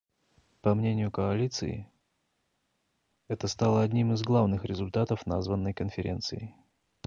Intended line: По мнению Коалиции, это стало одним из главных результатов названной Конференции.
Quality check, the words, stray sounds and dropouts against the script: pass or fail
pass